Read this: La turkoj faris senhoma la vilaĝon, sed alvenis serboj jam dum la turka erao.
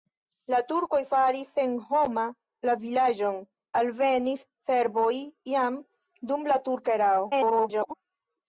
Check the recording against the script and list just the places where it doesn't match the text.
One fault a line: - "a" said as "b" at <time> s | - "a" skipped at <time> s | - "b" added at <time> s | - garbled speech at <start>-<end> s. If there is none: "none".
- "sed" skipped at 3.4 s
- garbled speech at 7.3-7.9 s